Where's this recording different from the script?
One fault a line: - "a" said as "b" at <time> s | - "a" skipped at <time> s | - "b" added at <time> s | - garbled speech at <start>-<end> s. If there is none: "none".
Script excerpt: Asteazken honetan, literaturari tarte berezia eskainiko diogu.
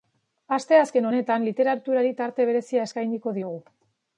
none